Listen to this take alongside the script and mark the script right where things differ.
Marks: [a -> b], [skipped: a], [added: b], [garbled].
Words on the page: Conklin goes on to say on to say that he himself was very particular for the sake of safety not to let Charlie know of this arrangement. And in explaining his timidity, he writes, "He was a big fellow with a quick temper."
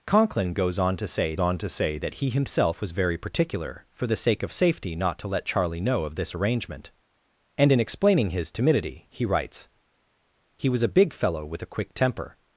Conklin goes on to say on to say that he himself was very particular for the sake of safety not to let Charlie know of this arrangement. And in explaining his timidity, he writes, "He was a big fellow with a quick temper."